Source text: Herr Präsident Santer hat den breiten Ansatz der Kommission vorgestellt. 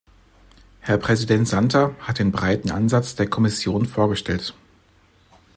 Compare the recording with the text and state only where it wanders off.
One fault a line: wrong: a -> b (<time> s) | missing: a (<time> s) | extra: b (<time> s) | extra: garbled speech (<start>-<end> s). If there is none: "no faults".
no faults